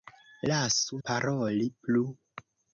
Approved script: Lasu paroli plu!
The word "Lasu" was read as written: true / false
true